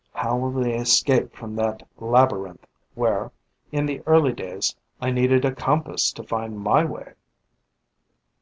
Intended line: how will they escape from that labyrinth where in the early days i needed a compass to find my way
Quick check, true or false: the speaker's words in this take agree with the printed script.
true